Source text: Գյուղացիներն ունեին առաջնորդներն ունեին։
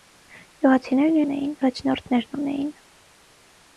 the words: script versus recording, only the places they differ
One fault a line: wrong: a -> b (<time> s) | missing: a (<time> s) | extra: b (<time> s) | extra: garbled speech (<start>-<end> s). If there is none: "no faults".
no faults